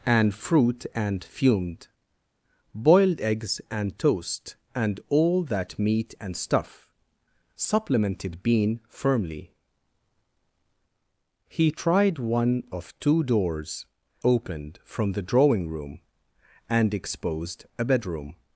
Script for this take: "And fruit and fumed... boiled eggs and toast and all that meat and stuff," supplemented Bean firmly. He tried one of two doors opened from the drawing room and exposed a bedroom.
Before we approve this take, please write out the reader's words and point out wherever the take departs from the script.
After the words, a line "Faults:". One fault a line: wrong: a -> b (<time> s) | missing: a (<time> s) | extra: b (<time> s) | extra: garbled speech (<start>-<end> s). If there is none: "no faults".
"And fruit and fumed... boiled eggs and toast and all that meat and stuff," supplemented Bean firmly. He tried one of two doors opened from the drawing room and exposed a bedroom.
Faults:
no faults